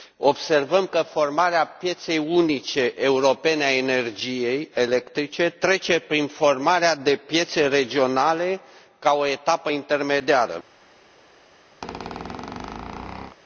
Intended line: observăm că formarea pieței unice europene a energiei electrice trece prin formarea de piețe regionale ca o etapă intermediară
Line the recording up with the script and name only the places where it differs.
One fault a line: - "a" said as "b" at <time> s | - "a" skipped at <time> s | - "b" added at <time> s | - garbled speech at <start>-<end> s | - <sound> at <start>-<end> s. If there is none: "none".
- squeak at 11.8-13.4 s